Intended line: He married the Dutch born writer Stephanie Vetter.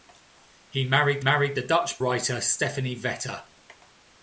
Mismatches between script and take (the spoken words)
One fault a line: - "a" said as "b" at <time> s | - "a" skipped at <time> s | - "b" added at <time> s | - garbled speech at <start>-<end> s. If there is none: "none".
- "married" added at 1.2 s
- "born" skipped at 2.0 s